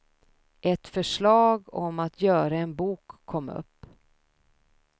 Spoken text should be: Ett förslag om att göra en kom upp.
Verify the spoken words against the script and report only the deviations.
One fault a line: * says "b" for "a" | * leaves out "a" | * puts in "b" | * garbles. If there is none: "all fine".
* puts in "bok"